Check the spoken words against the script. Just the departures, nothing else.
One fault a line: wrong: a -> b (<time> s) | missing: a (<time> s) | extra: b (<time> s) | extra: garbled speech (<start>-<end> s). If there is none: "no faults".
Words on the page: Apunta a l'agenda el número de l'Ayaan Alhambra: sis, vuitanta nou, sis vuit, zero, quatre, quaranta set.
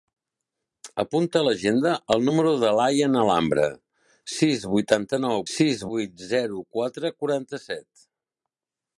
no faults